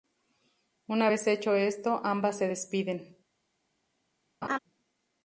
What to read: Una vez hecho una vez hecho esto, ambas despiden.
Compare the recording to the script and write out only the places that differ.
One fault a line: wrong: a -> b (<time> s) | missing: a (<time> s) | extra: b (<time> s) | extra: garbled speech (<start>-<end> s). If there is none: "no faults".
missing: una vez hecho (1.5 s)
extra: se (2.4 s)